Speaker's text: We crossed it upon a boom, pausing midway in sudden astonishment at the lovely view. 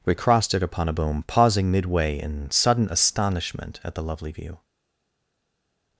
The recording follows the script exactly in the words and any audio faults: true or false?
true